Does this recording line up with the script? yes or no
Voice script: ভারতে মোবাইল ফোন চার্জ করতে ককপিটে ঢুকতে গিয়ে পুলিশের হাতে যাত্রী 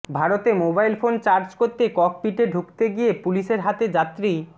yes